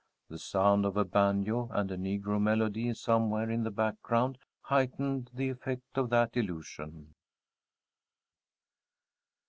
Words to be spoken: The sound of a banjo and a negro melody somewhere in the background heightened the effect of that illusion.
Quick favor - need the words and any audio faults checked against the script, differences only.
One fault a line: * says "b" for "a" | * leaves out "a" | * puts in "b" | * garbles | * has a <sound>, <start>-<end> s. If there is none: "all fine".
all fine